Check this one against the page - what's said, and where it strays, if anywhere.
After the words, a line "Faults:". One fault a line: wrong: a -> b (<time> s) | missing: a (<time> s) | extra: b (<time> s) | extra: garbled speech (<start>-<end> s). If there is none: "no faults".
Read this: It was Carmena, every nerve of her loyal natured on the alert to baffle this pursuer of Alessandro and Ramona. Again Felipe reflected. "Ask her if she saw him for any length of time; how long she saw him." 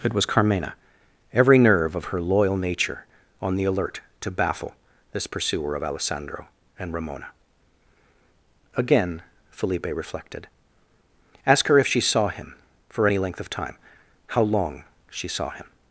It was Carmena, every nerve of her loyal nature on the alert to baffle this pursuer of Alessandro and Ramona. Again Felipe reflected. "Ask her if she saw him for any length of time; how long she saw him."
Faults:
wrong: natured -> nature (2.6 s)